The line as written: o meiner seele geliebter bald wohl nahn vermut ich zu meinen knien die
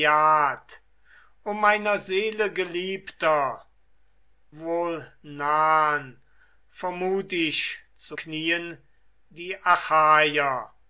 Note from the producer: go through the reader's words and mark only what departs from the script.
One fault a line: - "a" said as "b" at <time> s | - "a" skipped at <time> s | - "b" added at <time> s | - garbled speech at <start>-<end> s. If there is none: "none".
- "bald" skipped at 3.6 s
- "meinen" skipped at 8.2 s